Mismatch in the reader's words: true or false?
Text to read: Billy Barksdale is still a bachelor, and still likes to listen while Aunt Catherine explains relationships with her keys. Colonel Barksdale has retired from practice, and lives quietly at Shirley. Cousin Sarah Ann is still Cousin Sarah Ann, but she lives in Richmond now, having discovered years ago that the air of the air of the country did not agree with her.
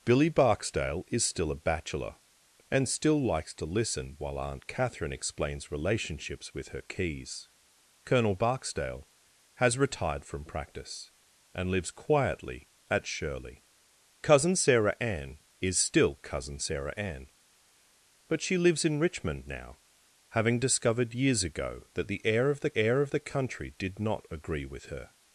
false